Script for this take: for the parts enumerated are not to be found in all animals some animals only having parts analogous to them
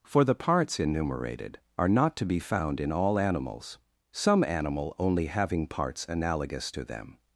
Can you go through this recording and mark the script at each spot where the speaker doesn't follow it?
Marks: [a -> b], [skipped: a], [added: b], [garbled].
for the parts enumerated are not to be found in all animals some [animals -> animal] only having parts analogous to them